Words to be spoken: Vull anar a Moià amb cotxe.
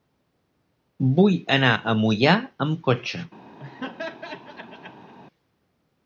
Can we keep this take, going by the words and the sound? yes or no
no